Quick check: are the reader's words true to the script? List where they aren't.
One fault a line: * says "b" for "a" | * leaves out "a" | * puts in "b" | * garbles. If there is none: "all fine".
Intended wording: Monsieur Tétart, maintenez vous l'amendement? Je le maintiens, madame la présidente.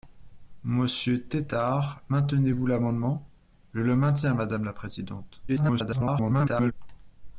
* garbles